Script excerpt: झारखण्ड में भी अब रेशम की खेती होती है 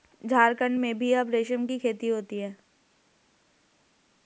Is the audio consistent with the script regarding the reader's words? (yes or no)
yes